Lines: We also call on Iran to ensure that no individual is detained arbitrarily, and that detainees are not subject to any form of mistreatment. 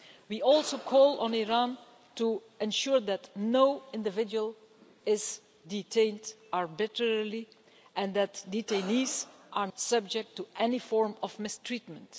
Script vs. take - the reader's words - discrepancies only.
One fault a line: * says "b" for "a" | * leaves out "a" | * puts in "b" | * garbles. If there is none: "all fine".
* leaves out "not"